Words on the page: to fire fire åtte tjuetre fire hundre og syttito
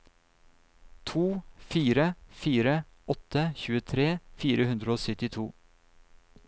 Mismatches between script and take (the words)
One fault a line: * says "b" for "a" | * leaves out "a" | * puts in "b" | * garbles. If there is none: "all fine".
all fine